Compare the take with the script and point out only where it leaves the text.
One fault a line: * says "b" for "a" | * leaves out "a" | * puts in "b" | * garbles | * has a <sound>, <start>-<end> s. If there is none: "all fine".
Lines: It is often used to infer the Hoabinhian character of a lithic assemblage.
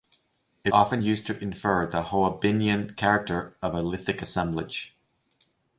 * leaves out "is"